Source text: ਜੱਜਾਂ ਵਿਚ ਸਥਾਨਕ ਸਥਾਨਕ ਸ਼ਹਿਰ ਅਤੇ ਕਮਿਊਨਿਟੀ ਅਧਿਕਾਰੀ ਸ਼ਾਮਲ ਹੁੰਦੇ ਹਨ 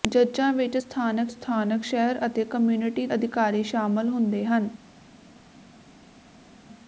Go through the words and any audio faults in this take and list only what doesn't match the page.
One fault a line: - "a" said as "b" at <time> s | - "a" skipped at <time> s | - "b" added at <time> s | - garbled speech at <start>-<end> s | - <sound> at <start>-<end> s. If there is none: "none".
none